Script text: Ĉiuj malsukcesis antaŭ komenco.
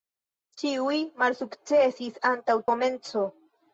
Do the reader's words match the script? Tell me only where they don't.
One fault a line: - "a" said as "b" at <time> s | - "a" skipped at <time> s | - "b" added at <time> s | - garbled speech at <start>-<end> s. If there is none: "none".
none